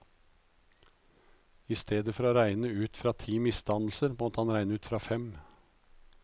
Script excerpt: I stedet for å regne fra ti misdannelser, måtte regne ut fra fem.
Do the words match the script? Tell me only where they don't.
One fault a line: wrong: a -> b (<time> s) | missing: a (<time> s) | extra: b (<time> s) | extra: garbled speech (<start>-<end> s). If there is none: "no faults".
extra: ut (2.8 s)
extra: han (4.4 s)